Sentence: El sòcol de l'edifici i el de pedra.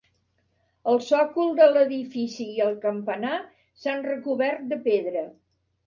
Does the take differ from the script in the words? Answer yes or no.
yes